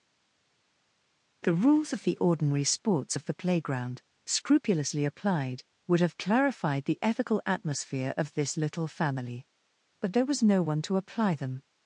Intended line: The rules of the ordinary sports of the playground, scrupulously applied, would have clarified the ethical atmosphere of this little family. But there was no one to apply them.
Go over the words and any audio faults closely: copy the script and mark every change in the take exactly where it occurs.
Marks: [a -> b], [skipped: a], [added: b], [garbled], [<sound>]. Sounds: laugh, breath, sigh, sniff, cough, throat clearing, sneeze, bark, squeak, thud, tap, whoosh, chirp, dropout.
The rules of the ordinary sports of the playground, scrupulously applied, would have clarified the ethical atmosphere of this little family. But there was no one to apply them.